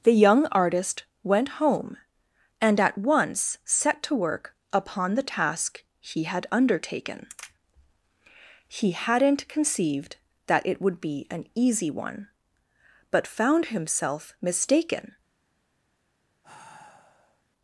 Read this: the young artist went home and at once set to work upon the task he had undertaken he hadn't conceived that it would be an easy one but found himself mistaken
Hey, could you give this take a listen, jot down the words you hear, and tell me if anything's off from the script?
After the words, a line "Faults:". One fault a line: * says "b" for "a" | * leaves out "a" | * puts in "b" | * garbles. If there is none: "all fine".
the young artist went home and at once set to work upon the task he had undertaken he hadn't conceived that it would be an easy one but found himself mistaken
Faults:
all fine